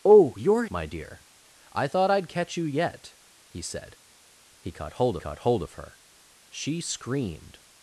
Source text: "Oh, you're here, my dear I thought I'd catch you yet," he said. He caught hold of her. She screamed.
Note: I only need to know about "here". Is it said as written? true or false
false